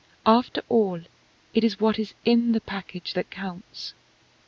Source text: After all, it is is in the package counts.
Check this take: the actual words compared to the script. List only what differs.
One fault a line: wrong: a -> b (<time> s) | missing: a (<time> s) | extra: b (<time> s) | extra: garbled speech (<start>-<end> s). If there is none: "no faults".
extra: what (1.8 s)
extra: that (3.1 s)